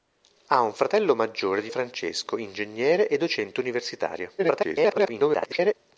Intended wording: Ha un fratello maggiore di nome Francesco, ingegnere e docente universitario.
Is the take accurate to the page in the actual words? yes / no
no